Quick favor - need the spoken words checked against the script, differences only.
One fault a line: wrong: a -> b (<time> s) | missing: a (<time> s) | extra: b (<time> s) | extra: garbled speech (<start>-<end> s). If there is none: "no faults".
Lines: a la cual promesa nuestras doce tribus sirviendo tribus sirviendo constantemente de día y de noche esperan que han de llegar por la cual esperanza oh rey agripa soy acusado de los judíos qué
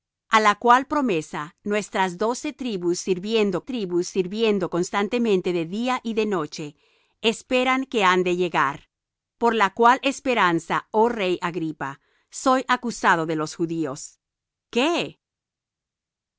no faults